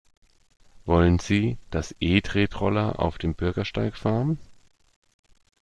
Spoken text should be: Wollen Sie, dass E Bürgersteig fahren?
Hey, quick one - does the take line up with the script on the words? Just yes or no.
no